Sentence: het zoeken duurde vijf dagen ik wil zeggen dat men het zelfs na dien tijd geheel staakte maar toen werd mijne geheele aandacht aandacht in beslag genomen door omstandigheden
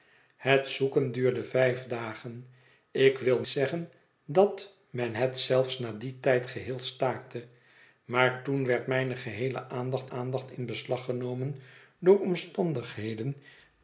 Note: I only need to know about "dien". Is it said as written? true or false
true